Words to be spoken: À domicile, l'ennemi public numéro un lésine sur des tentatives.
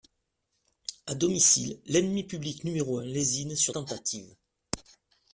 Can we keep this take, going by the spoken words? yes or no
no